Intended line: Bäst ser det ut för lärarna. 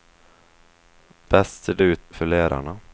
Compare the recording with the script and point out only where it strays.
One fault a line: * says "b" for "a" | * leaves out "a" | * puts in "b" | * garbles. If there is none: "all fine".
all fine